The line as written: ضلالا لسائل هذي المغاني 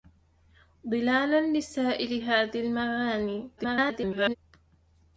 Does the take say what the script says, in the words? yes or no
no